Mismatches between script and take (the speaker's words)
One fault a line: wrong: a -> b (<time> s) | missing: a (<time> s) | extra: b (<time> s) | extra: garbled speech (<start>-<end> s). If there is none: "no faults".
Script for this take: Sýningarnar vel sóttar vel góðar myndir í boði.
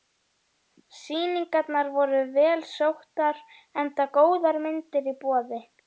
extra: voru (2.0 s)
wrong: vel -> enda (3.8 s)